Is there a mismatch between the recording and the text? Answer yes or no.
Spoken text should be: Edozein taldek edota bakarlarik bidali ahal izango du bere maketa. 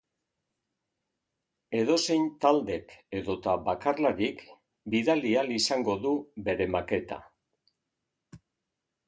no